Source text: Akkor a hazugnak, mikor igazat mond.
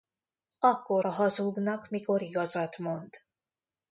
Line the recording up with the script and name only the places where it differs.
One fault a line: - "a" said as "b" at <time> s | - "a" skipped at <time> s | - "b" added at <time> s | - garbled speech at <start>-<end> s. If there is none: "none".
none